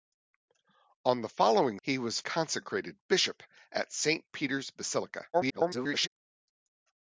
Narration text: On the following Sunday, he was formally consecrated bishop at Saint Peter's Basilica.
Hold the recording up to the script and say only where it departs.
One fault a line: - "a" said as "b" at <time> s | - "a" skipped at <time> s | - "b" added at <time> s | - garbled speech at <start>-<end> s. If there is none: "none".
- "Sunday" skipped at 1.8 s
- "formally" skipped at 2.2 s
- garbled speech at 5.3-6.1 s